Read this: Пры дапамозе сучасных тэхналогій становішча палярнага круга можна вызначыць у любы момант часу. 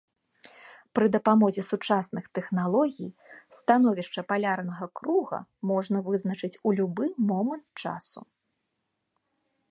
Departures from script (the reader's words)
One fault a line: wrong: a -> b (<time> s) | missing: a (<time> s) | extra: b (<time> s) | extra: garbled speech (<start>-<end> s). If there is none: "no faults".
no faults